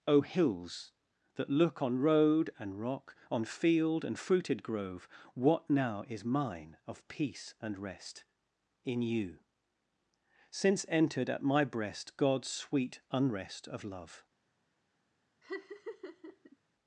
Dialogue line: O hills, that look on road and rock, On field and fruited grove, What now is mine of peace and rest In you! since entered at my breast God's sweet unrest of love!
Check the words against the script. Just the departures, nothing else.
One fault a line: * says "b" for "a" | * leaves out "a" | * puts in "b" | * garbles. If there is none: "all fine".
all fine